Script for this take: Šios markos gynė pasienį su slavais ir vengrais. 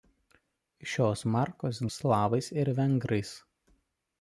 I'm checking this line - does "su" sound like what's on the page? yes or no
no